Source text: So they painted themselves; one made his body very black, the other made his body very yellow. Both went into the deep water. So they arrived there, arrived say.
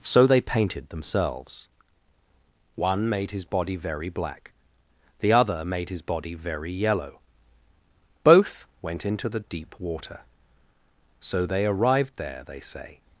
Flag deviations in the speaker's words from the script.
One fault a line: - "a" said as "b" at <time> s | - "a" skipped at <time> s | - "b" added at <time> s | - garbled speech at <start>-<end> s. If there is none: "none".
- "arrived" said as "they" at 12.5 s